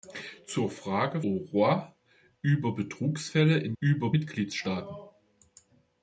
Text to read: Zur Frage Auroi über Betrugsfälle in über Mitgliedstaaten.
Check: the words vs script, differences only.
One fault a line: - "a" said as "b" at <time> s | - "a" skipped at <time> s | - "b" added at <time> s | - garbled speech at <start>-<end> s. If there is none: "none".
none